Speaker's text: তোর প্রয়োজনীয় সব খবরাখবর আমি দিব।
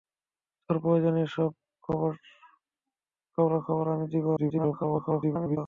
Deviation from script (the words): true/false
true